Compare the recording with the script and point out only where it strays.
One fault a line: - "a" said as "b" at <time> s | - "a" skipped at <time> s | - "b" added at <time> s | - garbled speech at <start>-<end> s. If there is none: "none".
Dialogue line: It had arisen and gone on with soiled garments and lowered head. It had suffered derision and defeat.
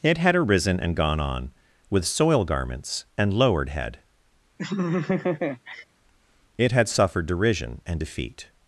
- "soiled" said as "soil" at 2.0 s